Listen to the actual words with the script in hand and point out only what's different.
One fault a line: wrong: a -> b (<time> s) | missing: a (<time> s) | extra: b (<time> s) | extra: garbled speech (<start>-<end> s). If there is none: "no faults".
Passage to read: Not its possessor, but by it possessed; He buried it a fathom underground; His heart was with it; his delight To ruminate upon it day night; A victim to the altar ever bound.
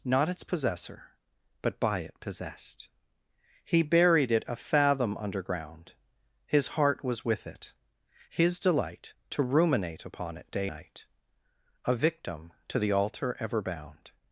no faults